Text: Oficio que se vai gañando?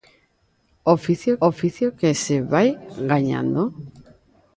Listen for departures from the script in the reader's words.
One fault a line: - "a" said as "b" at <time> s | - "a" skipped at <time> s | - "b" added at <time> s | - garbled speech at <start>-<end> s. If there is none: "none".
- "oficio" added at 1.5 s